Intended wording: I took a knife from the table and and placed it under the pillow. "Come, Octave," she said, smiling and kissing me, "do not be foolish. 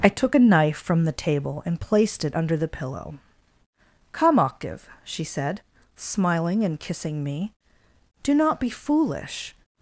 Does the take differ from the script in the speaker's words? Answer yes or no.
yes